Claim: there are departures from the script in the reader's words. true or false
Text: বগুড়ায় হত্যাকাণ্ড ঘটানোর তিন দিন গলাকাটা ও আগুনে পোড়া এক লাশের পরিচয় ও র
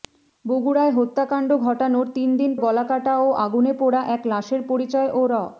false